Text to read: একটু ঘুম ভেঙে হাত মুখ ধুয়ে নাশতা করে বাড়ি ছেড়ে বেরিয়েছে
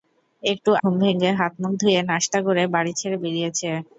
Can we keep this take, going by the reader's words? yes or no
yes